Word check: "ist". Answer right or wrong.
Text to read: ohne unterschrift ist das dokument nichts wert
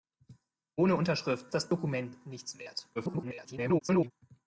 wrong